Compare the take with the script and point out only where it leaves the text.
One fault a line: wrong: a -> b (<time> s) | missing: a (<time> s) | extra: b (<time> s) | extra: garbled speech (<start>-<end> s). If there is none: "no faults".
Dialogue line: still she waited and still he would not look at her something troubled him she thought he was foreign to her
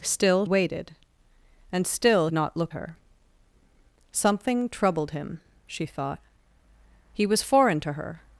missing: she (0.5 s)
missing: he would (2.3 s)
missing: at (2.7 s)